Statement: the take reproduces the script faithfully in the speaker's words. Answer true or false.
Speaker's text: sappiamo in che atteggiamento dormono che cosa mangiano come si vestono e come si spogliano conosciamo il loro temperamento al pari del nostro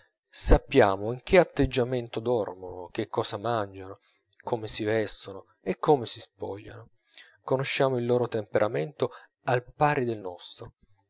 true